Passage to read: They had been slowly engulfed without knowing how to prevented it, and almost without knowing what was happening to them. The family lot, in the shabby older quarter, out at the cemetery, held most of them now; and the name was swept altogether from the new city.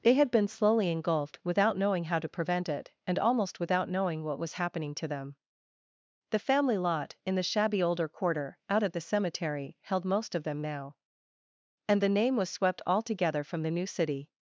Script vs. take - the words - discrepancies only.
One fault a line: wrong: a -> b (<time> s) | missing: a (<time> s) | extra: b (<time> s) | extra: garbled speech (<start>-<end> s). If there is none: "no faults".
wrong: prevented -> prevent (2.3 s)